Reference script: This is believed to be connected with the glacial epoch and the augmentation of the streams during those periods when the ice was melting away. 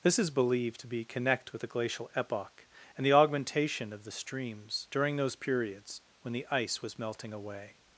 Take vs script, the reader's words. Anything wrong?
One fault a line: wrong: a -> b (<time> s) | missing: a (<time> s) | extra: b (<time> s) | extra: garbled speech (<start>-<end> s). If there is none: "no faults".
wrong: connected -> connect (1.1 s)